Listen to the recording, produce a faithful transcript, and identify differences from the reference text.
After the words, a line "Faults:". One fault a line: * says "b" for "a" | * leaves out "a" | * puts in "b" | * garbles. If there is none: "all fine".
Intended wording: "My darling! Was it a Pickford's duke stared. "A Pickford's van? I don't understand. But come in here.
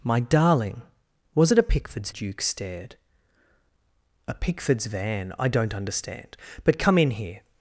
"My darling! Was it a Pickford's duke stared. "A Pickford's van? I don't understand. But come in here.
Faults:
all fine